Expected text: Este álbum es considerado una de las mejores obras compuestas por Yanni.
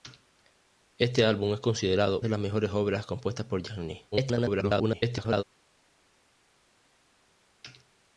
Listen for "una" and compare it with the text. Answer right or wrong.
wrong